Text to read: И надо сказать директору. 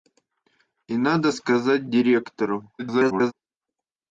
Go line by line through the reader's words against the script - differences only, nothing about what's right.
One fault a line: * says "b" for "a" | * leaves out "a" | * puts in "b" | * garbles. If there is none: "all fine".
* garbles